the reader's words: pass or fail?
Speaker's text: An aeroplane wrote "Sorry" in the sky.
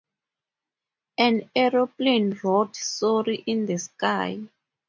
pass